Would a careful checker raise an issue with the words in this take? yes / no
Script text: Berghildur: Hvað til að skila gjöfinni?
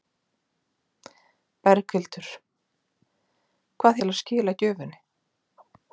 no